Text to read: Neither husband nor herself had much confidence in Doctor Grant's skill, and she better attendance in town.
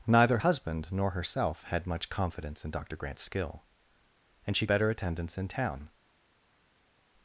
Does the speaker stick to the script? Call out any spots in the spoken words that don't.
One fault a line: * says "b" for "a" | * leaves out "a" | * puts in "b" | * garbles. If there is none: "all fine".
all fine